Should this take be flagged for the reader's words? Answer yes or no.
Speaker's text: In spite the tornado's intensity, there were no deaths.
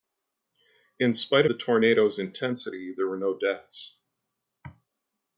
no